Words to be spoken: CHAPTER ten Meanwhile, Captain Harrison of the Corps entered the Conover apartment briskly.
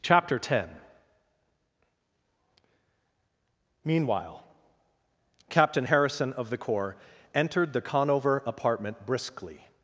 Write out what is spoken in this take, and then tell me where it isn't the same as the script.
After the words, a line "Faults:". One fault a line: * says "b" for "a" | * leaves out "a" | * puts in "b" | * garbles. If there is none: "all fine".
CHAPTER ten Meanwhile, Captain Harrison of the Corps entered the Conover apartment briskly.
Faults:
all fine